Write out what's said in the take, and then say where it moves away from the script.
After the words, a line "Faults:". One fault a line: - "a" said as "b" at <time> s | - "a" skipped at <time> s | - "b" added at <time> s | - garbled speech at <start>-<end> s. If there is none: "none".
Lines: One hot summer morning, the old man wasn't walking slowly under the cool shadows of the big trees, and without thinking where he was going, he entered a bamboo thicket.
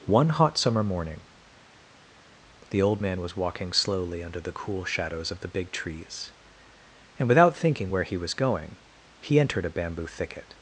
One hot summer morning, the old man was walking slowly under the cool shadows of the big trees, and without thinking where he was going, he entered a bamboo thicket.
Faults:
- "wasn't" said as "was" at 3.2 s